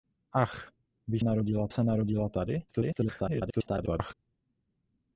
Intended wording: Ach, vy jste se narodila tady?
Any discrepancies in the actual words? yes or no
yes